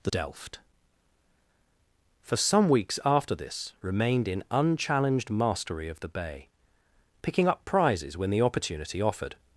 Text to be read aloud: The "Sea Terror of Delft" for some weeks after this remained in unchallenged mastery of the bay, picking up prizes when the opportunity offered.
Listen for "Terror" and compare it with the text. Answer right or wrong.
wrong